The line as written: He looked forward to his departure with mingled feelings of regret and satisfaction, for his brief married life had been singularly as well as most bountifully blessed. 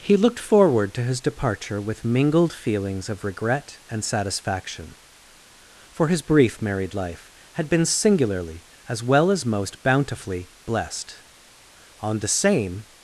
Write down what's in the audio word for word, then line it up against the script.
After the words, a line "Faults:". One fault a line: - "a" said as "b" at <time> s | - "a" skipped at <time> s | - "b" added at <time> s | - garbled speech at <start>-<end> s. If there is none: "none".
He looked forward to his departure with mingled feelings of regret and satisfaction, for his brief married life had been singularly as well as most bountifully blessed. On the same
Faults:
- "On the same" added at 12.0 s